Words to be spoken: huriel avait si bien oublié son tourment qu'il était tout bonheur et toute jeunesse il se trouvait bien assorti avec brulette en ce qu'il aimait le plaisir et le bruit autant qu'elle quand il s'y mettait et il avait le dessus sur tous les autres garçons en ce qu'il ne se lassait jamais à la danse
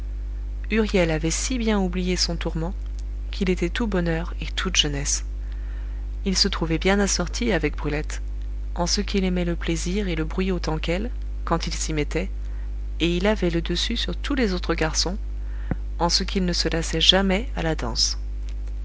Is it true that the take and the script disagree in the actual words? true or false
false